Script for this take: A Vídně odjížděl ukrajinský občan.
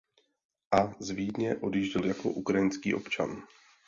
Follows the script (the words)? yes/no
no